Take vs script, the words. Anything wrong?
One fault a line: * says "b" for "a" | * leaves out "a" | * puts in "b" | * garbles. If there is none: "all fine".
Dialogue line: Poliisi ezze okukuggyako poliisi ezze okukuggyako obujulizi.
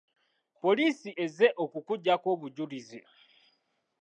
* leaves out "poliisi ezze okukuggyako"